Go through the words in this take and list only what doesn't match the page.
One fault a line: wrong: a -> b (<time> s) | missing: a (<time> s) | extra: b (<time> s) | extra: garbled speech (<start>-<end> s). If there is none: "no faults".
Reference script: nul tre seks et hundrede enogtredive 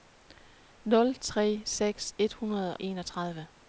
no faults